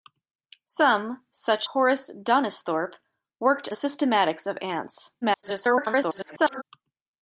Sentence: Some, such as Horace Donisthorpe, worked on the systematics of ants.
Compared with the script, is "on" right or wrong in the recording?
wrong